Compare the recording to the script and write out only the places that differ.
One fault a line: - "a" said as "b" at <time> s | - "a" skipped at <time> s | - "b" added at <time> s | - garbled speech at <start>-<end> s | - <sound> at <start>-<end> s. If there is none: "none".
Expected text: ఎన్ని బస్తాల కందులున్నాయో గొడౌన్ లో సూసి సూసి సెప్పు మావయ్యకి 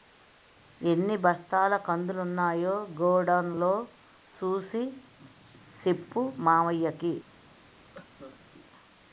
- "సూసి" skipped at 4.8 s
- cough at 7.9-8.4 s